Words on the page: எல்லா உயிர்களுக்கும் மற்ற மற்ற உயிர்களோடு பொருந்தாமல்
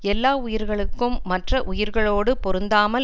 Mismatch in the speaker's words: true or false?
true